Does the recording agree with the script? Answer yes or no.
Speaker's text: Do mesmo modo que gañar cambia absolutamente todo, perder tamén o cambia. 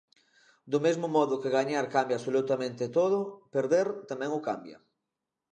yes